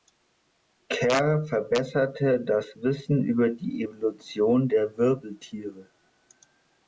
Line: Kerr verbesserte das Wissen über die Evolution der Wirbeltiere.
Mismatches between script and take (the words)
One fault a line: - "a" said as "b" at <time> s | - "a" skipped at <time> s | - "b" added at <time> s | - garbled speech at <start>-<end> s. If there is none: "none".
none